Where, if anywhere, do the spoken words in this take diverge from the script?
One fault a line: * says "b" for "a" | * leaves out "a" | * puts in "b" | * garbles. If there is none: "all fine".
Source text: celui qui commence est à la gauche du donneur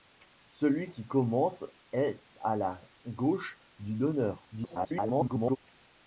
* garbles